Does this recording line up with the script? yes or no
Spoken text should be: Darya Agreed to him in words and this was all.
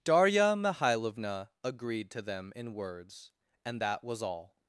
no